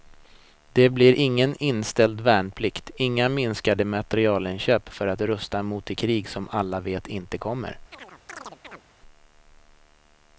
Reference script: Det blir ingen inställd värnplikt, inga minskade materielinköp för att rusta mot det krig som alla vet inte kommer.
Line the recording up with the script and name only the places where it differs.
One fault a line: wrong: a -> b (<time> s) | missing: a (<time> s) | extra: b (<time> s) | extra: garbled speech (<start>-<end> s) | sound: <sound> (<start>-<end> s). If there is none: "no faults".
sound: chirp (7.9-8.8 s)